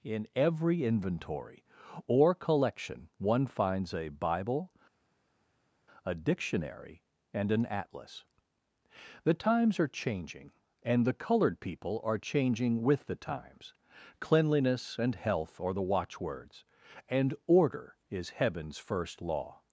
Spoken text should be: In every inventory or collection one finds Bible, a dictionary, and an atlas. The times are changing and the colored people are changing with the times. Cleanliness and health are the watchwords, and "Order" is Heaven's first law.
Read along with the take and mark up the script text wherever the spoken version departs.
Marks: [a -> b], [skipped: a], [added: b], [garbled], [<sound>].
In every inventory or collection one finds [added: a] Bible, a dictionary, and an atlas. The times are changing and the colored people are changing with the times. Cleanliness and health are the watchwords, and "Order" is Heaven's first law.